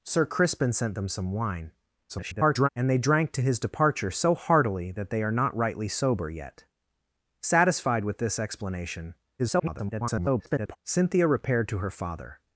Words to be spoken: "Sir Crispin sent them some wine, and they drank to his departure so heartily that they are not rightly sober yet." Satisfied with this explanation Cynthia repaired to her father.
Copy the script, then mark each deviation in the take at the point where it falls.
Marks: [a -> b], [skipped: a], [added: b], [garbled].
"Sir Crispin sent them some wine, [garbled] and they drank to his departure so heartily that they are not rightly sober yet." Satisfied with this explanation [garbled] Cynthia repaired to her father.